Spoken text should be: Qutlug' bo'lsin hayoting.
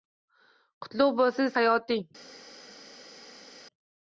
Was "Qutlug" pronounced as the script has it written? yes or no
yes